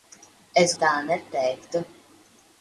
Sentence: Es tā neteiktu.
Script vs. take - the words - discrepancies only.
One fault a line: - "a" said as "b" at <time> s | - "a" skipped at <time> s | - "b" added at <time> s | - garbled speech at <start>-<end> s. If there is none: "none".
none